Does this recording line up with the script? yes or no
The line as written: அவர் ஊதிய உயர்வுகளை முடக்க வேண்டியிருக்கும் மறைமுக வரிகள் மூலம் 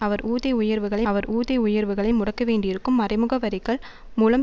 no